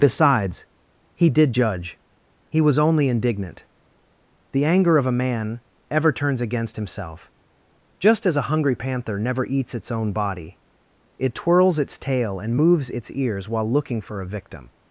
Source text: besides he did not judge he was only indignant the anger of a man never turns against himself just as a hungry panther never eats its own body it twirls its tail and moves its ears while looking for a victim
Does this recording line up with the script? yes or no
no